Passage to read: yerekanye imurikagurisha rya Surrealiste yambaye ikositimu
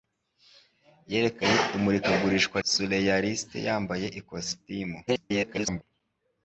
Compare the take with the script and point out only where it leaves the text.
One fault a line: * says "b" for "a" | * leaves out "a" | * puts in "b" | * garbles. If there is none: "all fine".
* leaves out "rya"
* garbles